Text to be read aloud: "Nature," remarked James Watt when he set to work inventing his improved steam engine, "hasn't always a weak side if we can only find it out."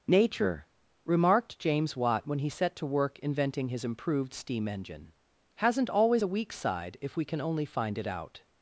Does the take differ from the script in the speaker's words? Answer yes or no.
no